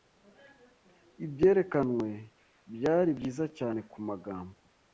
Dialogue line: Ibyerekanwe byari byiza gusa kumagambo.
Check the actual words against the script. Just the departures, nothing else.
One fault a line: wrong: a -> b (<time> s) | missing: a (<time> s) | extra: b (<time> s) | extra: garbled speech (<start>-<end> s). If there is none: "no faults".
wrong: gusa -> cyane (3.6 s)